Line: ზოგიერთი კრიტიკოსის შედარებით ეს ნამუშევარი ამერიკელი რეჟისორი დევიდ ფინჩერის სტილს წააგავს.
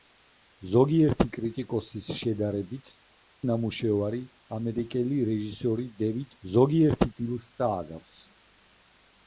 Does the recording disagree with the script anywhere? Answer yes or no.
yes